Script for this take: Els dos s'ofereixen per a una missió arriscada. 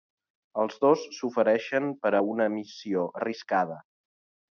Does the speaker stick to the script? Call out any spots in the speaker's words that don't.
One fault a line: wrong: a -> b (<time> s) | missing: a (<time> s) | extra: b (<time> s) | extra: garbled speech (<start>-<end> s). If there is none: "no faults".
no faults